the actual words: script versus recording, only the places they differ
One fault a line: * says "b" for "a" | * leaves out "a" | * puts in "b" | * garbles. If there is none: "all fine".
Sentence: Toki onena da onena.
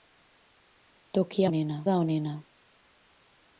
all fine